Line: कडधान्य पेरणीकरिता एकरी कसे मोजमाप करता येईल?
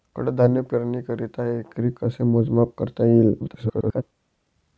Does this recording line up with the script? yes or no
no